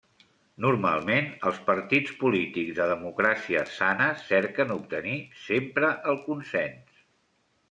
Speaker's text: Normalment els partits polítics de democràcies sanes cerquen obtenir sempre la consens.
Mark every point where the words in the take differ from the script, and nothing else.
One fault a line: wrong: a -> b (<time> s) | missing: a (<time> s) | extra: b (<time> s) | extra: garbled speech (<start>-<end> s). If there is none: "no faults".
wrong: la -> el (6.1 s)